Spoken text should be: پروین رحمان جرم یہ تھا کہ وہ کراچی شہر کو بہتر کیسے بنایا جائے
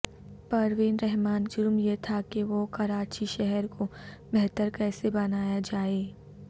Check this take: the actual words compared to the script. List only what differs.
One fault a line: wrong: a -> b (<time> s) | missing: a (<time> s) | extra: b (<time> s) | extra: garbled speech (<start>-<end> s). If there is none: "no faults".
no faults